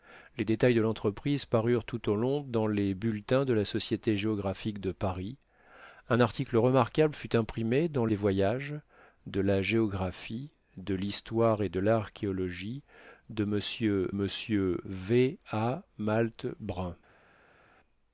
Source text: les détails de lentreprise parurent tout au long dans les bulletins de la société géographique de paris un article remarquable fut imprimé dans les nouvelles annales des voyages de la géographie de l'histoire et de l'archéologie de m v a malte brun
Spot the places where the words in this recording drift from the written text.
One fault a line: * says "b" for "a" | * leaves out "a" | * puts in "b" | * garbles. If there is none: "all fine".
* leaves out "les nouvelles annales"
* puts in "m"